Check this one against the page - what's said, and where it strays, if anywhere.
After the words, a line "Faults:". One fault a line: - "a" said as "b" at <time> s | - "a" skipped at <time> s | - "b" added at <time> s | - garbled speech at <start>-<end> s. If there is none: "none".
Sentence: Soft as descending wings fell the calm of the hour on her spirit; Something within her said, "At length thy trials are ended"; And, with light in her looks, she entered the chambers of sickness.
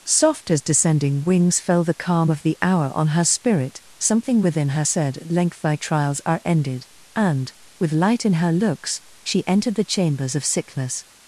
Soft as descending wings fell the calm of the hour on her spirit; Something within her said, "At length thy trials are ended"; And, with light in her looks, she entered the chambers of sickness.
Faults:
none